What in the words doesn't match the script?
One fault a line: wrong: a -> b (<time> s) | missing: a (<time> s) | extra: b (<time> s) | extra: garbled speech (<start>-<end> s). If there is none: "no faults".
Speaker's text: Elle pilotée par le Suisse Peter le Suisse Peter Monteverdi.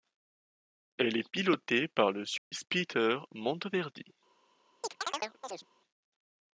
extra: est (1.1 s)
missing: le Suisse Peter (3.2 s)